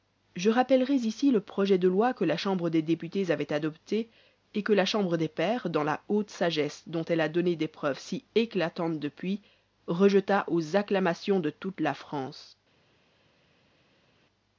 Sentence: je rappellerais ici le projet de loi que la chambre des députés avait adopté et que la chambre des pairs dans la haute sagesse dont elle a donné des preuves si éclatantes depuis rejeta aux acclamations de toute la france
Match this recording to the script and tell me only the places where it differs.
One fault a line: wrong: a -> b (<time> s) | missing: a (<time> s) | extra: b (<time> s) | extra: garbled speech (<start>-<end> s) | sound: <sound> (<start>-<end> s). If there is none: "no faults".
no faults